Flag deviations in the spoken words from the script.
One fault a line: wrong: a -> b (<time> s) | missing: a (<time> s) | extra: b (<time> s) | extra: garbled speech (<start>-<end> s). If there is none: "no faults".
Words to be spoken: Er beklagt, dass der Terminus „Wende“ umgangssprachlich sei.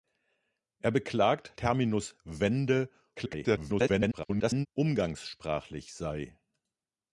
missing: dass der (1.5 s)
extra: garbled speech (3.2-4.7 s)